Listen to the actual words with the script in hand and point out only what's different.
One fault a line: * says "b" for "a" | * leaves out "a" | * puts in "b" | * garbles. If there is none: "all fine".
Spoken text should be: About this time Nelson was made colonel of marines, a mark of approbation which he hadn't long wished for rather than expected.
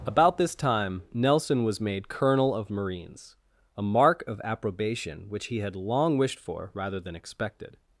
* says "had" for "hadn't"